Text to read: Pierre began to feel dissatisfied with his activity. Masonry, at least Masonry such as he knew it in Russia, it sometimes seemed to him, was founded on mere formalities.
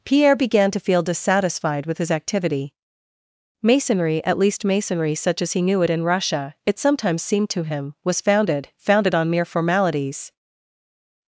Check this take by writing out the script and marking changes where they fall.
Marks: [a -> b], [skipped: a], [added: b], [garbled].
Pierre began to feel dissatisfied with his activity. Masonry, at least Masonry such as he knew it in Russia, it sometimes seemed to him, was founded [added: founded] on mere formalities.